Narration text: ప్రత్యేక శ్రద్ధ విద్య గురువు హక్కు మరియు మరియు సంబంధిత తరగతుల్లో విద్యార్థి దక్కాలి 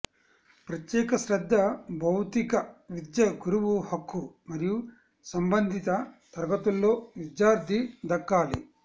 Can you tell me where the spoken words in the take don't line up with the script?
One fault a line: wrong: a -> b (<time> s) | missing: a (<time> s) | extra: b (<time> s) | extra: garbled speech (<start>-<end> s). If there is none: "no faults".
extra: భౌతిక (2.0 s)
missing: మరియు (4.8 s)